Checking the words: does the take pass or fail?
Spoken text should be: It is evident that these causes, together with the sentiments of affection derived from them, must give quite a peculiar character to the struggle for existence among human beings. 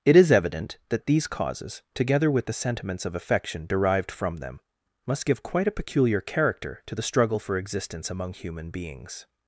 pass